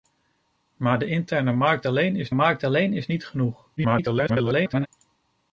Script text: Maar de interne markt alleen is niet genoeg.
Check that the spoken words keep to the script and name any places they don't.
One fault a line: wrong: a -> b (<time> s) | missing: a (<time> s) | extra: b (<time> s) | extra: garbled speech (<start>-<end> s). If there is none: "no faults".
extra: markt alleen is (2.3 s)
extra: garbled speech (3.8-4.9 s)